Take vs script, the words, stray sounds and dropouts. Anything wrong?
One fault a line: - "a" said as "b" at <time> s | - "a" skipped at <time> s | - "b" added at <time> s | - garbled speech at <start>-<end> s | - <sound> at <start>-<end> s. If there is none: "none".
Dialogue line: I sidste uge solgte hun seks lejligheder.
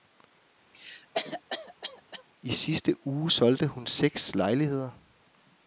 - cough at 0.7-2.2 s